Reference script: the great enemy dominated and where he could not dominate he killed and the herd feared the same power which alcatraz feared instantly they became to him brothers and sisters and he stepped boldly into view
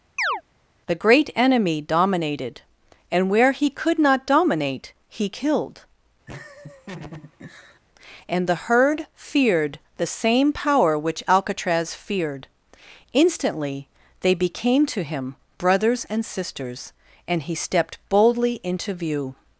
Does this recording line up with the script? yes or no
yes